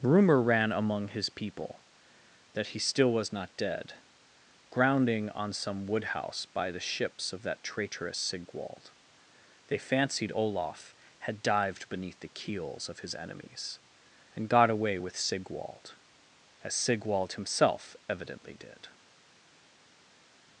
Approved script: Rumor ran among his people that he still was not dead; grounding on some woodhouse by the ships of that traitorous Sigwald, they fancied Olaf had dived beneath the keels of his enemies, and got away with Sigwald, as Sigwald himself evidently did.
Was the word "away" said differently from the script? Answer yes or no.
no